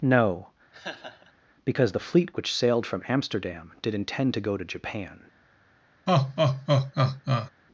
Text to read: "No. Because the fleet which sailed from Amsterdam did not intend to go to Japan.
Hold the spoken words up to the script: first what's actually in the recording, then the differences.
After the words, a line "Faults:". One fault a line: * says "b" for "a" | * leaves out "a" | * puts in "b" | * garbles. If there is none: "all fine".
"No. Because the fleet which sailed from Amsterdam did intend to go to Japan.
Faults:
* leaves out "not"